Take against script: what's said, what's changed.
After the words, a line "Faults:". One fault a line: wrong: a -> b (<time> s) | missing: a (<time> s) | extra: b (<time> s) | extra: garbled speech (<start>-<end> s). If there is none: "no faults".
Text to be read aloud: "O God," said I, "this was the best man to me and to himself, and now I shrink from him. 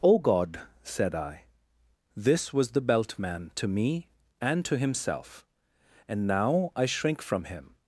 "O God," said I, "this was the belt man to me and to himself, and now I shrink from him.
Faults:
wrong: best -> belt (2.8 s)